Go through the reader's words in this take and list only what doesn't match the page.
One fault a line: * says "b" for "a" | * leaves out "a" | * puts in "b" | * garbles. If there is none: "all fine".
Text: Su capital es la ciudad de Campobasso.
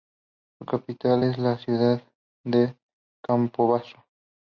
all fine